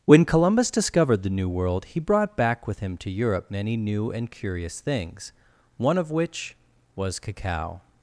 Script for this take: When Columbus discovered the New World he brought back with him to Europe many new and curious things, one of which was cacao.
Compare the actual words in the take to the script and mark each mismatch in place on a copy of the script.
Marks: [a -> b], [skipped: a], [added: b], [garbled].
When Columbus discovered the New World he brought back with him to Europe many new and curious things, one of which was cacao.